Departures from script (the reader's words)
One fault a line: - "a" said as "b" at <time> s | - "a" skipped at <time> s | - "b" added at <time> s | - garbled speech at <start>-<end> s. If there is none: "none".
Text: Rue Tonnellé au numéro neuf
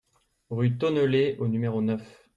none